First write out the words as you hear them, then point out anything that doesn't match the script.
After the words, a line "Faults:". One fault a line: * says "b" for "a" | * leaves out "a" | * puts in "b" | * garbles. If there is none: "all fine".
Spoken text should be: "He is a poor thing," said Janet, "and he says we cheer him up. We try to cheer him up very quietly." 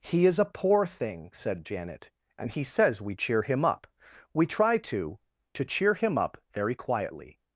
"He is a poor thing," said Janet, "and he says we cheer him up. We try to to cheer him up very quietly."
Faults:
* puts in "to"